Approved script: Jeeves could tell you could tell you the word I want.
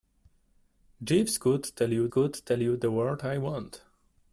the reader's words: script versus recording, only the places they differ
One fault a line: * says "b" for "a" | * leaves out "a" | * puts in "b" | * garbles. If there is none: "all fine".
all fine